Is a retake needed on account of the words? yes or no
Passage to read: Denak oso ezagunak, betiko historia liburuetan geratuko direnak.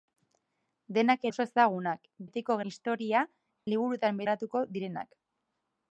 no